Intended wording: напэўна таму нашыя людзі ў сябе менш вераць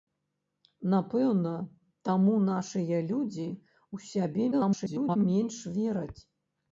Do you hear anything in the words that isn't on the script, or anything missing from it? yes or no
yes